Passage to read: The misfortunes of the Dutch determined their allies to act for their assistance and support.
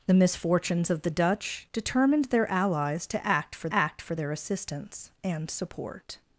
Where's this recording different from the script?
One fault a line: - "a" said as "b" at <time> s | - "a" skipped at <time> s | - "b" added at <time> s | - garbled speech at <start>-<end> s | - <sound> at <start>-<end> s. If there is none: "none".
- "act for" added at 3.7 s